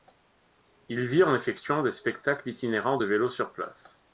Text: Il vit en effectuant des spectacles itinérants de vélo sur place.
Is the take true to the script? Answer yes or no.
yes